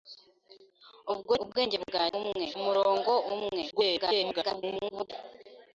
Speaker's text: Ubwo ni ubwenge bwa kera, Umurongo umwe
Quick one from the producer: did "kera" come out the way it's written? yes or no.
no